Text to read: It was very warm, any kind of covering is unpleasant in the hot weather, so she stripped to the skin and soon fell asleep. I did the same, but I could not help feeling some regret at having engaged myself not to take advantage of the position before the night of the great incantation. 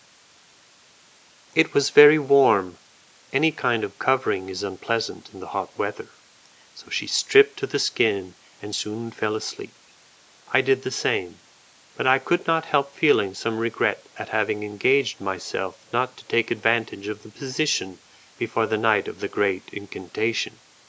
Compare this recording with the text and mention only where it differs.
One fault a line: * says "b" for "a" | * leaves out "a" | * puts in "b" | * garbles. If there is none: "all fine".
all fine